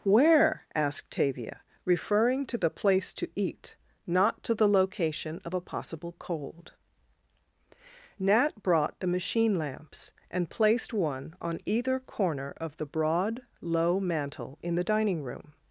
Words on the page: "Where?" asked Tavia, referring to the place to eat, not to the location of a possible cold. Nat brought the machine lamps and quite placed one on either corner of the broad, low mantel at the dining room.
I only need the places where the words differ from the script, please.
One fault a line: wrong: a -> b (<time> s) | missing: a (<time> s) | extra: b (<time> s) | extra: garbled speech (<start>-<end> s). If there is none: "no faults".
missing: quite (10.5 s)
wrong: at -> in (14.6 s)